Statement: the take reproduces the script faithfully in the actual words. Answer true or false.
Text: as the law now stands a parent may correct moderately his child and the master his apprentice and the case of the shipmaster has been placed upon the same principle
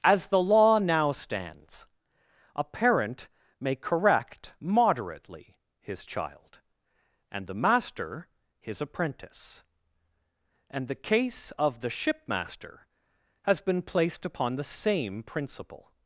true